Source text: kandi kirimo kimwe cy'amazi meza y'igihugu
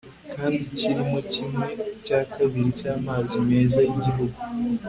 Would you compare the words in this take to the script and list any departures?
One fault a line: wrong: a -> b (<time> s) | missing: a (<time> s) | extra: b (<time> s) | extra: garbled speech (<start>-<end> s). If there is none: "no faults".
extra: cya kabiri (2.0 s)